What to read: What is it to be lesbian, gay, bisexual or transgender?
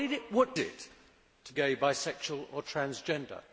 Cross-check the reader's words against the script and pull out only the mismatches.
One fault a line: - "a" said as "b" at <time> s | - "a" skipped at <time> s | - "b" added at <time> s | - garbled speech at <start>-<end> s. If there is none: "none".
- "is" skipped at 0.6 s
- "be lesbian" skipped at 1.5 s